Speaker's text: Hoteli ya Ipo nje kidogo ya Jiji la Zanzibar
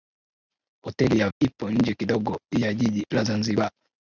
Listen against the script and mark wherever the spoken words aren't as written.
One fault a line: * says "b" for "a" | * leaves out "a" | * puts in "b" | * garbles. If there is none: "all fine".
all fine